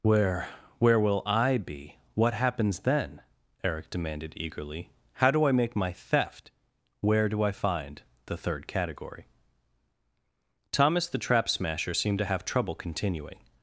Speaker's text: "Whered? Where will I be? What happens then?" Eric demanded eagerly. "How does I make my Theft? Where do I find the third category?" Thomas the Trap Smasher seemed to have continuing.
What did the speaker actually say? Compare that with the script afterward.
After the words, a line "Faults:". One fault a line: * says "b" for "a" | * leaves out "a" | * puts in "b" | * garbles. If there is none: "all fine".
"Where? Where will I be? What happens then?" Eric demanded eagerly. "How do I make my Theft? Where do I find the third category?" Thomas the Trap Smasher seemed to have trouble continuing.
Faults:
* says "Where" for "Whered"
* says "do" for "does"
* puts in "trouble"